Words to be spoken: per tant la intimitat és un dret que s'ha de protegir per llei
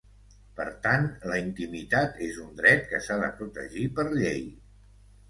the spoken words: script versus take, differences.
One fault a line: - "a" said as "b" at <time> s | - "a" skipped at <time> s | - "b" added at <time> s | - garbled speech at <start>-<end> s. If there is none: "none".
none